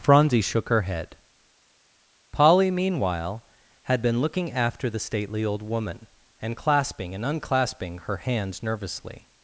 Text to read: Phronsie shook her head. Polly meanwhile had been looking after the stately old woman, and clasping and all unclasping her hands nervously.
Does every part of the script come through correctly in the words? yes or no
no